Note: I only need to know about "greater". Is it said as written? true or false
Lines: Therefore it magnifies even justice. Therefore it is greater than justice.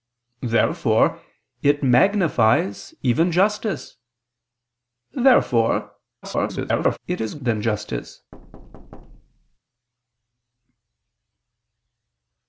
false